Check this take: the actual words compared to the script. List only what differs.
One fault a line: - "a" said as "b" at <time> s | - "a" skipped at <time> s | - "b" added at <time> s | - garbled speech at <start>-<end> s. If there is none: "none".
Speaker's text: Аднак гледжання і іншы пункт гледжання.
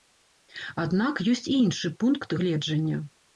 - "гледжання" said as "ёсць" at 1.3 s